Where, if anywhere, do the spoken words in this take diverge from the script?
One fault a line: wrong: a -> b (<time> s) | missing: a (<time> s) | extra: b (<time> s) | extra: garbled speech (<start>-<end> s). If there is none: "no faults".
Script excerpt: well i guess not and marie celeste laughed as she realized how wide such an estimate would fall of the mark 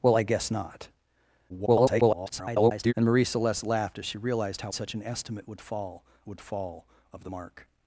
extra: garbled speech (1.5-2.9 s)
missing: wide (4.7 s)
extra: would fall (6.3 s)